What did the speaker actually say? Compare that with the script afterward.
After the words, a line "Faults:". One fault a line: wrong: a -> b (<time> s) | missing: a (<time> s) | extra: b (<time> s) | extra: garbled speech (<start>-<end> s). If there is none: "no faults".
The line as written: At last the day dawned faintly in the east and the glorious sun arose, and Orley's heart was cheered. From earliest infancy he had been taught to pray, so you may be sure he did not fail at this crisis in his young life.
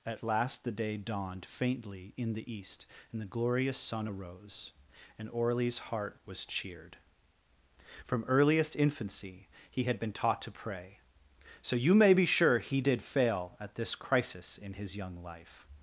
At last the day dawned faintly in the east and the glorious sun arose, and Orley's heart was cheered. From earliest infancy he had been taught to pray, so you may be sure he did fail at this crisis in his young life.
Faults:
missing: not (13.0 s)